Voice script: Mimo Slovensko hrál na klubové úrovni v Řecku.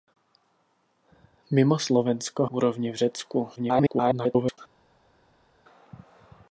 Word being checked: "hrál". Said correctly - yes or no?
no